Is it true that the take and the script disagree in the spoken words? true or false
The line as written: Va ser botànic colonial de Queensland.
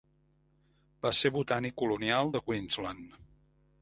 false